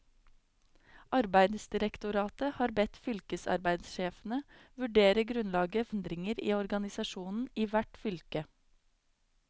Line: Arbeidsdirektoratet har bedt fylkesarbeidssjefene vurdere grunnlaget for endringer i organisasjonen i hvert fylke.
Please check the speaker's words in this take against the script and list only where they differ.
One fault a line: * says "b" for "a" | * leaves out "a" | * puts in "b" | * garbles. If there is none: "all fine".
* leaves out "for"